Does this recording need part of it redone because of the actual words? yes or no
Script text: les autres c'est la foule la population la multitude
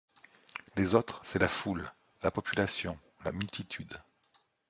no